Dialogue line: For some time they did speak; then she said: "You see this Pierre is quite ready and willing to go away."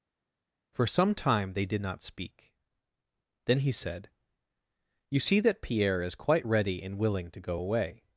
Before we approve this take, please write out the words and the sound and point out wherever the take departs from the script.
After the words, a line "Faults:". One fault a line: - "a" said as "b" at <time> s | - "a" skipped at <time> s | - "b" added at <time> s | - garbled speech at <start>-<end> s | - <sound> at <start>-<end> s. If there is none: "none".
For some time they did not speak; then he said: "You see that Pierre is quite ready and willing to go away."
Faults:
- "not" added at 1.8 s
- "she" said as "he" at 3.6 s
- "this" said as "that" at 5.4 s